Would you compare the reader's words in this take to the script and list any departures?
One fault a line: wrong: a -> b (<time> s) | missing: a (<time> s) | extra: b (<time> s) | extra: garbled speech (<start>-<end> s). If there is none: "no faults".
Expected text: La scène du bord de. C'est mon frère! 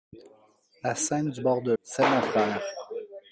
no faults